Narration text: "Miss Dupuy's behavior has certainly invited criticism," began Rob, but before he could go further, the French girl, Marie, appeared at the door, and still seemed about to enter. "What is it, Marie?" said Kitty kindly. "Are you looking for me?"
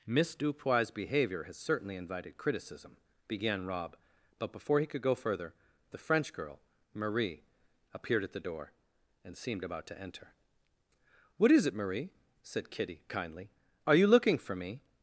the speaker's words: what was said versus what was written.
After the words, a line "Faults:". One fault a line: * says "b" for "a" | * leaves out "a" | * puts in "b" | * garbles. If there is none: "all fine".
"Miss Dupuy's behavior has certainly invited criticism," began Rob, but before he could go further, the French girl, Marie, appeared at the door, and seemed about to enter. "What is it, Marie?" said Kitty kindly. "Are you looking for me?"
Faults:
* leaves out "still"